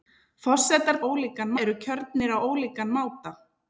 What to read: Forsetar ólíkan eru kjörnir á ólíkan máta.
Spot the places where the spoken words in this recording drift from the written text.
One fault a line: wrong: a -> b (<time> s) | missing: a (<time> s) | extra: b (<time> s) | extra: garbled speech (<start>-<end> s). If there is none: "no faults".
no faults